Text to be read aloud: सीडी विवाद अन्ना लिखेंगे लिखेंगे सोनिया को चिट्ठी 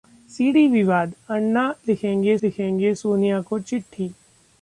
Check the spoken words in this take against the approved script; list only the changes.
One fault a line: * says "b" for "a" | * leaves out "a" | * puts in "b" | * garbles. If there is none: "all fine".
all fine